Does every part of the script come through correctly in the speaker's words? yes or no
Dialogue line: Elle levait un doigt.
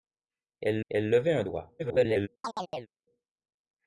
no